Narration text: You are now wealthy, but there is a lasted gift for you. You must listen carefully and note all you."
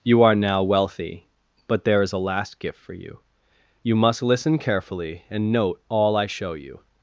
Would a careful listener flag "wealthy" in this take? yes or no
no